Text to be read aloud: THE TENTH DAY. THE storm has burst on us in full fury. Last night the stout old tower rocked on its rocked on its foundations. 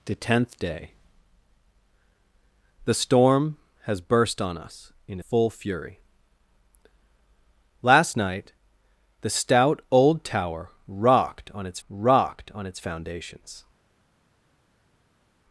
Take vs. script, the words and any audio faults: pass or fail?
pass